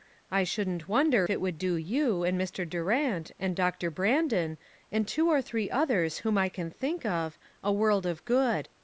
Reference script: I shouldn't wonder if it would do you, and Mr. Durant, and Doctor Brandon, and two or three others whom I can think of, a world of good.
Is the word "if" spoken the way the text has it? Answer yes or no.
no